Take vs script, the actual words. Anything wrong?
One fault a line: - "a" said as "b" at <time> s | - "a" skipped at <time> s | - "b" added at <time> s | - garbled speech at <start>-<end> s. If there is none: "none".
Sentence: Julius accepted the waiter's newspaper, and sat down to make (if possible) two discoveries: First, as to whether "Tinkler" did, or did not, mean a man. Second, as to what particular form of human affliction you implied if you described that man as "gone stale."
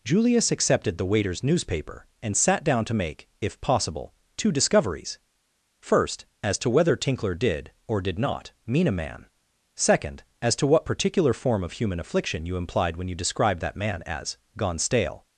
- "if" said as "when" at 13.0 s